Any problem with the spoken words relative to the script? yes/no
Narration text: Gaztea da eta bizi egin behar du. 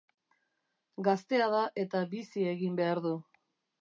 no